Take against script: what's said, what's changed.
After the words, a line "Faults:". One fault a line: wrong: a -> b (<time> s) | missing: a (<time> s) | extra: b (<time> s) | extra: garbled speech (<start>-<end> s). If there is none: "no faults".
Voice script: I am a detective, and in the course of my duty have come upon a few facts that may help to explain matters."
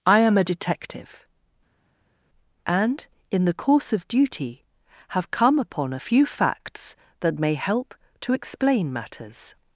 I am a detective, and in the course of duty have come upon a few facts that may help to explain matters."
Faults:
missing: my (4.1 s)